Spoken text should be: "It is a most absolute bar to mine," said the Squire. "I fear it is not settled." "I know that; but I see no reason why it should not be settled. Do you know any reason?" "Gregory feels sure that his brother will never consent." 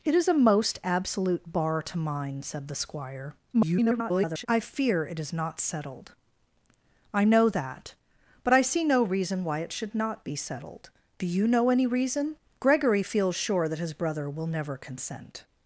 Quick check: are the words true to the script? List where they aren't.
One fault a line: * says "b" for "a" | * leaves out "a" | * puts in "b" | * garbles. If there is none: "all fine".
* garbles